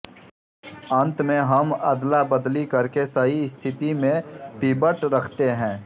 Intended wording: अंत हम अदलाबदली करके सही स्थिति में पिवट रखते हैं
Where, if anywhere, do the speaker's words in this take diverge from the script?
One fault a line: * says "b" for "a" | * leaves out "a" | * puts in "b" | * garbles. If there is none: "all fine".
* puts in "में"